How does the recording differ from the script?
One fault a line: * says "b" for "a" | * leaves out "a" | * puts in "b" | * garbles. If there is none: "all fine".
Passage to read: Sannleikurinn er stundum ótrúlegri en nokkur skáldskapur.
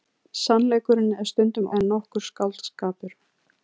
* leaves out "ótrúlegri"